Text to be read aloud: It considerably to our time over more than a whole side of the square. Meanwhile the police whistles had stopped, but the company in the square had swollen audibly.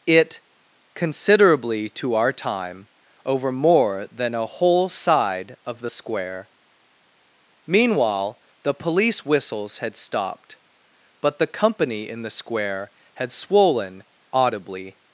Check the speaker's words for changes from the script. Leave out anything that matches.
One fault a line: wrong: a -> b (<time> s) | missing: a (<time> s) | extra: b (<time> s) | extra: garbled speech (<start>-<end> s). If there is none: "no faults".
no faults